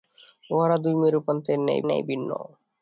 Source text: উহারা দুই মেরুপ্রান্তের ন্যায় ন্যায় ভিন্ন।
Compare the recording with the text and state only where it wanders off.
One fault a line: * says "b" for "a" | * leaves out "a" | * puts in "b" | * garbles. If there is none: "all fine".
all fine